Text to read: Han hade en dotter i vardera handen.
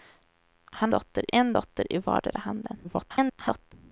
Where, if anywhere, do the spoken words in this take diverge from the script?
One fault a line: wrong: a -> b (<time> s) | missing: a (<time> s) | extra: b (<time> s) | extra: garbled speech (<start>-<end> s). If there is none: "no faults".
wrong: hade -> dotter (0.9 s)
extra: garbled speech (2.8-3.7 s)